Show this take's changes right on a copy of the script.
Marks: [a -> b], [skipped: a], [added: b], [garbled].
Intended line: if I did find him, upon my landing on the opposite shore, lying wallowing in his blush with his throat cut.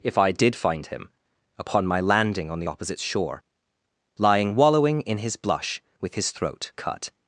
if I did find him, upon my landing on the opposite shore, lying wallowing in his blush with his throat cut.